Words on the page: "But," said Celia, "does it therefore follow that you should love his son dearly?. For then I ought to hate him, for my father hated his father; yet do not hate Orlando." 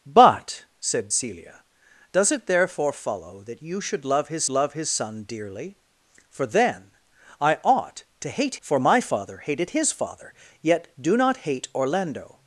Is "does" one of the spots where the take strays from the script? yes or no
no